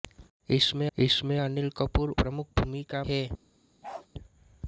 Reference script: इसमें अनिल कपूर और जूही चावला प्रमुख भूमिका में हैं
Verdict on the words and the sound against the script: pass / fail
fail